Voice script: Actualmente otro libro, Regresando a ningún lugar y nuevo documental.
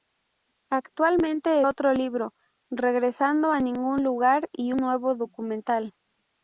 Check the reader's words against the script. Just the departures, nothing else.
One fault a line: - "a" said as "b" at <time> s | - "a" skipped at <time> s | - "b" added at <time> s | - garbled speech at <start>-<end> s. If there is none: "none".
none